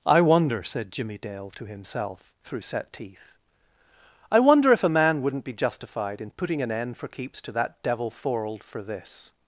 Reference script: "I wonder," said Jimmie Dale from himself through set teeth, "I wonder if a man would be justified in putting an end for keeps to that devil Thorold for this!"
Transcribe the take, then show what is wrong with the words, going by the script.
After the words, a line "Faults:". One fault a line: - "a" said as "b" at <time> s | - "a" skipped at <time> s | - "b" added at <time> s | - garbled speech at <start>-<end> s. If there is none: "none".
"I wonder," said Jimmie Dale to himself through set teeth, "I wonder if a man wouldn't be justified in putting an end for keeps to that devil Thorold for this!"
Faults:
- "from" said as "to" at 1.5 s
- "would" said as "wouldn't" at 5.2 s